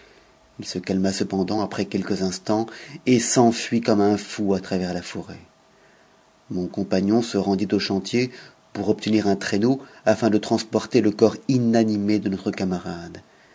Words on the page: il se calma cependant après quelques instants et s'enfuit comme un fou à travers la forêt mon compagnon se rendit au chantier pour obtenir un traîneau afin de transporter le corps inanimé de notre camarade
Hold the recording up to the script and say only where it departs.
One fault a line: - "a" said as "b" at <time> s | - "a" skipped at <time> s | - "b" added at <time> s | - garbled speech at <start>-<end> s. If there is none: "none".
none